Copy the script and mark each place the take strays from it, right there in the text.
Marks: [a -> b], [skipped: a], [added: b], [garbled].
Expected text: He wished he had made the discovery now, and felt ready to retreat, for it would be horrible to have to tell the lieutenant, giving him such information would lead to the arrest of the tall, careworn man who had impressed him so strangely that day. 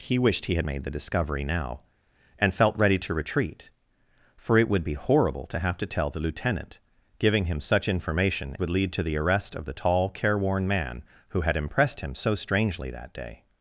He wished he had made the discovery now, and felt ready to retreat, for it would be horrible to have to tell the lieutenant, giving him such information would lead to the arrest of the tall, careworn man who had impressed him so strangely that day.